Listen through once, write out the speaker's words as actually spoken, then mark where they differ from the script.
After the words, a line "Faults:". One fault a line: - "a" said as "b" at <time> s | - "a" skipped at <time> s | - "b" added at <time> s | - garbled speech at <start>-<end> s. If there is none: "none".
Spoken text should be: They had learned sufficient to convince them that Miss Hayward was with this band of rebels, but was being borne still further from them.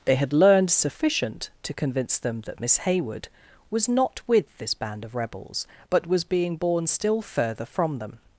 They had learned sufficient to convince them that Miss Hayward was not with this band of rebels, but was being borne still further from them.
Faults:
- "not" added at 3.9 s